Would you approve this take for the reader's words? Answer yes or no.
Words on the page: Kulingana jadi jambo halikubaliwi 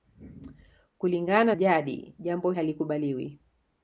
yes